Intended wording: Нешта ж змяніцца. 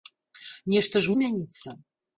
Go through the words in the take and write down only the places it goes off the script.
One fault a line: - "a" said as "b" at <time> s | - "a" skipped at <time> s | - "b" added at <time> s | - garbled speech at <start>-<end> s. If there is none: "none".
none